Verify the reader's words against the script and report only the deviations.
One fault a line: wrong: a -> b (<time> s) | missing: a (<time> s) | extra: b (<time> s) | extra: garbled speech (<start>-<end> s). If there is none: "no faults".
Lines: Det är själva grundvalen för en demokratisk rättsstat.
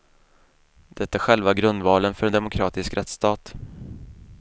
no faults